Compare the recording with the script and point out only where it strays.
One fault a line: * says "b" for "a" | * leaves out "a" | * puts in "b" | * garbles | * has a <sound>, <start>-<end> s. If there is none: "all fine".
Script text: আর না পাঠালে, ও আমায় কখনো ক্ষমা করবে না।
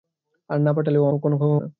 * leaves out "আমায়"
* leaves out "করবে"